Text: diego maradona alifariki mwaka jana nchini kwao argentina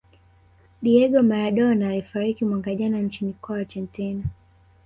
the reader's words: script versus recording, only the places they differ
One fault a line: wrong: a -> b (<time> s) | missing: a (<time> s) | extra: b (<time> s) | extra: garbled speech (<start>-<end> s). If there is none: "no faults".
no faults